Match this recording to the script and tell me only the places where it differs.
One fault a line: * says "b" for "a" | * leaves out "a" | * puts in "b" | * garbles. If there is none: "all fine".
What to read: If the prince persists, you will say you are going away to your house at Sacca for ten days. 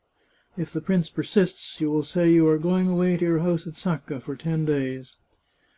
all fine